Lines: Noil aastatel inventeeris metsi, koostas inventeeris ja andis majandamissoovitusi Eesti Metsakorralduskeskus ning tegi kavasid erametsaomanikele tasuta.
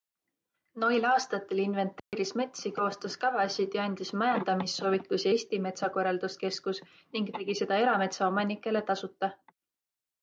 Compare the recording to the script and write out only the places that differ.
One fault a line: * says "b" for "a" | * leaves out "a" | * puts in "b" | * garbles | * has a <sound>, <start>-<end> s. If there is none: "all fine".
* has a dropout, 2.0-2.1 s
* says "kavasid" for "inventeeris"
* says "seda" for "kavasid"